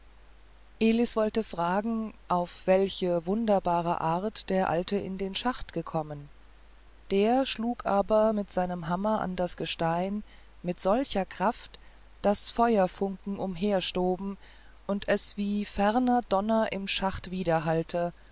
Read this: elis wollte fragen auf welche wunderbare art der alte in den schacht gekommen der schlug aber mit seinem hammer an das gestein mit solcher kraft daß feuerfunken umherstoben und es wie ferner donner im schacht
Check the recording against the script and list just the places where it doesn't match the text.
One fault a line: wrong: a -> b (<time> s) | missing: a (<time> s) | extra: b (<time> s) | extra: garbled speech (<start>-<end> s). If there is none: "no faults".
no faults